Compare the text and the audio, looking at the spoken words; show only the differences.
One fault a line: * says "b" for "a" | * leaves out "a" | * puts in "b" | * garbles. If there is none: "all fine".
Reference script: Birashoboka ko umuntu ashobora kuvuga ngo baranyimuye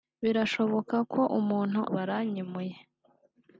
* leaves out "ashobora kuvuga ngo"